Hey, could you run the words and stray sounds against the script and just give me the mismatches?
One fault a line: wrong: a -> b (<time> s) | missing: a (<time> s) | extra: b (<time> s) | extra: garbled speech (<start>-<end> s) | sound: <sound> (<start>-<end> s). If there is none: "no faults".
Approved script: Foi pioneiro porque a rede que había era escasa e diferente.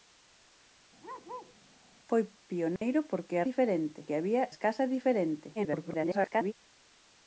sound: bark (1.0-1.6 s)
sound: dropout (2.8-2.8 s)
wrong: rede -> diferente (3.5 s)
missing: era (4.4 s)
extra: garbled speech (5.5-6.5 s)